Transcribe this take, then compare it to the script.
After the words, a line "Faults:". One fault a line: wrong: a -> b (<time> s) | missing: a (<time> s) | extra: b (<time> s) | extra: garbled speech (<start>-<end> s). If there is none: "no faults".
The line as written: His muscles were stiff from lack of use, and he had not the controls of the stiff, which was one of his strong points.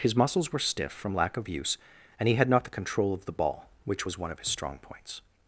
His muscles were stiff from lack of use, and he had not the control of the ball, which was one of his strong points.
Faults:
wrong: controls -> control (2.7 s)
wrong: stiff -> ball (3.3 s)